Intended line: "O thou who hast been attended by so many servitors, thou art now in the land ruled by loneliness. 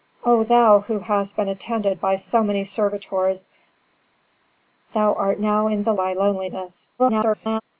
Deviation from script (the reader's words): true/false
true